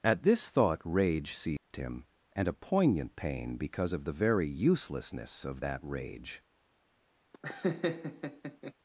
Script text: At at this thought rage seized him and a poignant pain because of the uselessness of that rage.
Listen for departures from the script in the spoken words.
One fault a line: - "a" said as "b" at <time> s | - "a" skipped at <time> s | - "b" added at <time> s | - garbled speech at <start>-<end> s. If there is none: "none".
- "at" skipped at 0.2 s
- "very" added at 4.1 s